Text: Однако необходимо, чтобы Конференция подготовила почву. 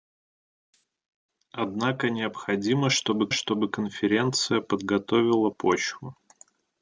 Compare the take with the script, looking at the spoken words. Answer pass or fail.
fail